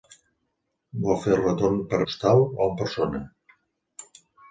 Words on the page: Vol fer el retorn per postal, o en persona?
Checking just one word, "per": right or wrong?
right